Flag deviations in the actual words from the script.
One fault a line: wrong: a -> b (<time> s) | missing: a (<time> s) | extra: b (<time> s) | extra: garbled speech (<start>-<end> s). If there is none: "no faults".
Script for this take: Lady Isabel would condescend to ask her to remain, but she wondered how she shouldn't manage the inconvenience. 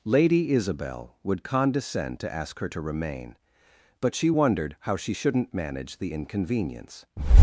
no faults